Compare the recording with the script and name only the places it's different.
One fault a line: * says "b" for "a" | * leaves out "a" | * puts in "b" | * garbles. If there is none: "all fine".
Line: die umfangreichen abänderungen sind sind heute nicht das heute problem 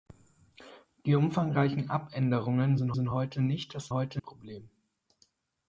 all fine